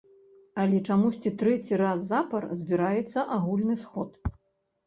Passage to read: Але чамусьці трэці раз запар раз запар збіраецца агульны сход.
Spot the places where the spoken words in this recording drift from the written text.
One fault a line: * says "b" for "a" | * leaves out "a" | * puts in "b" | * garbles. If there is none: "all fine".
* leaves out "раз запар"